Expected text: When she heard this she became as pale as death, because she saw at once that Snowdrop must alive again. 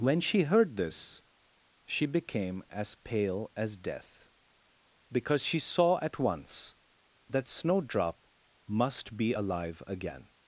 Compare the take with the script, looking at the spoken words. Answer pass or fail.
fail